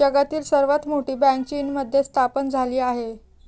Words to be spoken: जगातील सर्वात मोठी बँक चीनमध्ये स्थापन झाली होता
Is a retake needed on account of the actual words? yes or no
yes